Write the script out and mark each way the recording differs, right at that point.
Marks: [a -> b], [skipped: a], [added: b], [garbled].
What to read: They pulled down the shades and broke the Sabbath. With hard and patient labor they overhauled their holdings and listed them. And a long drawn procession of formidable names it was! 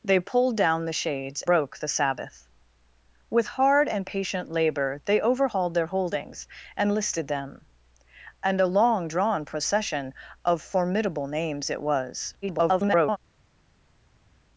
They pulled down the shades [skipped: and] broke the Sabbath. With hard and patient labor they overhauled their holdings and listed them. And a long drawn procession of formidable names it was! [garbled]